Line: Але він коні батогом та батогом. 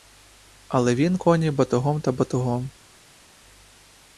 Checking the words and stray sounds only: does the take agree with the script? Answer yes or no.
yes